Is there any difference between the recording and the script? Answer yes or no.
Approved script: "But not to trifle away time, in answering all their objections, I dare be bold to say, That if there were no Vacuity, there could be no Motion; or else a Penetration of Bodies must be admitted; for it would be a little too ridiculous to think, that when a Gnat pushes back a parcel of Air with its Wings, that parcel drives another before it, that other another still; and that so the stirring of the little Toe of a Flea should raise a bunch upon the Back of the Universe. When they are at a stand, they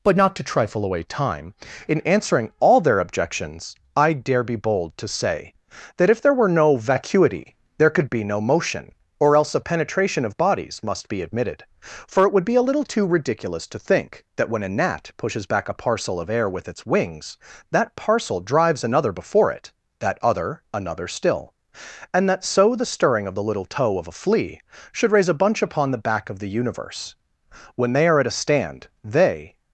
no